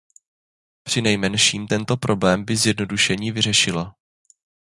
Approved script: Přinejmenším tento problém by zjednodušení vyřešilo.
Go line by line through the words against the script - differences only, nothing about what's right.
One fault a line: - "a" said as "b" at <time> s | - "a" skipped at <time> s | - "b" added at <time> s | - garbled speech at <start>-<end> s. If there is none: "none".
none